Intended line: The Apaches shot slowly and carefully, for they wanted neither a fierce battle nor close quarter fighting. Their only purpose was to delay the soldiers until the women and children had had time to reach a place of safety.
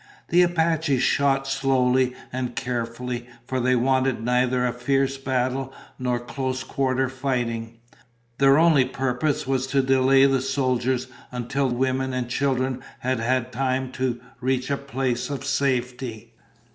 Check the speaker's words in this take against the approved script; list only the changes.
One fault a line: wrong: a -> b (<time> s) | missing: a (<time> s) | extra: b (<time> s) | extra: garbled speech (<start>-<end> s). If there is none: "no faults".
missing: the (11.7 s)